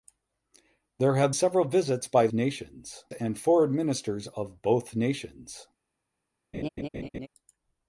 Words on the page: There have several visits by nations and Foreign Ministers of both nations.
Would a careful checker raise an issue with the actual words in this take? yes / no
no